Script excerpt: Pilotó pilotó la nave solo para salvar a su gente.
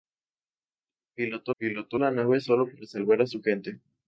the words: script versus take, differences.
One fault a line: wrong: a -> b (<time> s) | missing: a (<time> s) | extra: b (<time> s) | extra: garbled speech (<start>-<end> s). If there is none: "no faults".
no faults